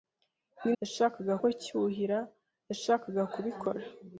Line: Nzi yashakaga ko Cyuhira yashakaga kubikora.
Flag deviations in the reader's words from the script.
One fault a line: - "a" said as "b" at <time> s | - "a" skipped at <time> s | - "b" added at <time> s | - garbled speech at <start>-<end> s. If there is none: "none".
none